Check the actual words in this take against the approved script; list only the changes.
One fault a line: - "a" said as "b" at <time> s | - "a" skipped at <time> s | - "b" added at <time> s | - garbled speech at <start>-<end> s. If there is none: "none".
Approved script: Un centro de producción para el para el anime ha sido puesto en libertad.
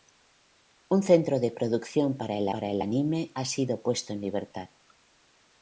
none